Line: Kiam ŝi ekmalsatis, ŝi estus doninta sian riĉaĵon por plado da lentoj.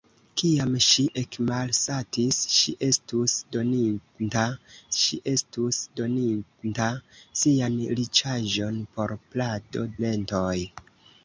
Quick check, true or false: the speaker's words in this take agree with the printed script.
false